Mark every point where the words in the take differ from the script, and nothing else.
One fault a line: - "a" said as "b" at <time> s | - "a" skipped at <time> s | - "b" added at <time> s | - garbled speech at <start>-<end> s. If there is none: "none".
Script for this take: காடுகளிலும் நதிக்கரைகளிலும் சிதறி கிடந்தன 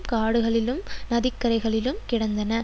- "சிதறி" skipped at 2.0 s